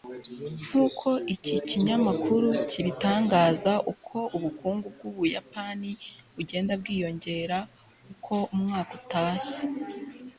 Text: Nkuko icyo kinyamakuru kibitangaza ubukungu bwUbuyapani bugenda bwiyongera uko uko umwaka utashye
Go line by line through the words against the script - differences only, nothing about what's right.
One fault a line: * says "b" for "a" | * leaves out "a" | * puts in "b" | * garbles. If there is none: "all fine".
* says "iki" for "icyo"
* puts in "uko"
* leaves out "uko"